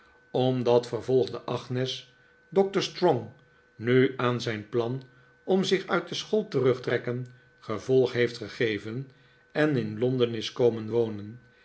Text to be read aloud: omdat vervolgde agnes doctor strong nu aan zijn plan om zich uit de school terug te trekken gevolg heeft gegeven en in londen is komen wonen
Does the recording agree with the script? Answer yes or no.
no